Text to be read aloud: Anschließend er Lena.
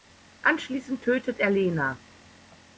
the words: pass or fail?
fail